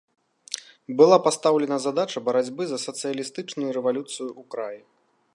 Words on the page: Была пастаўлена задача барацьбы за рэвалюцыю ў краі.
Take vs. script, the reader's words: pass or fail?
fail